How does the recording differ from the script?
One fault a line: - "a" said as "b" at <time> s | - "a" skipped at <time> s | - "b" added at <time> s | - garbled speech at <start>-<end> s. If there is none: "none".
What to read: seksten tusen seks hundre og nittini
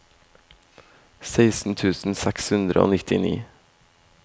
none